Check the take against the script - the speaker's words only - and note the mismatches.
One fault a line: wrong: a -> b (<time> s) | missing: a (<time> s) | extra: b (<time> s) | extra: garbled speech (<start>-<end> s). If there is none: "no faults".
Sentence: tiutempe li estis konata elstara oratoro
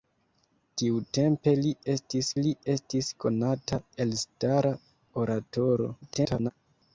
extra: li estis (2.4 s)
extra: garbled speech (6.0-6.5 s)